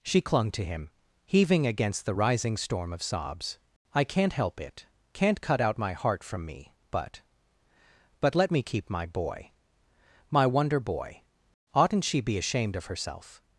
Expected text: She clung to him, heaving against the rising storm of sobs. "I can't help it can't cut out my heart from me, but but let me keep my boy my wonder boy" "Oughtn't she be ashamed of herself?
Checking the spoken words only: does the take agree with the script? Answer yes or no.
yes